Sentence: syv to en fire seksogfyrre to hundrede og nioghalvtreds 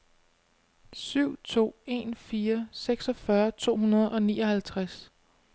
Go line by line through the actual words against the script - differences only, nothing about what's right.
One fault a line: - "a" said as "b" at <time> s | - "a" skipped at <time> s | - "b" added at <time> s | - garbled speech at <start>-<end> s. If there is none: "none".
none